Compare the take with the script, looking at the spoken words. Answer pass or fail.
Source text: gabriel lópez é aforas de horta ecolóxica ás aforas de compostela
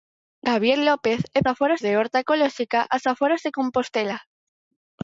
pass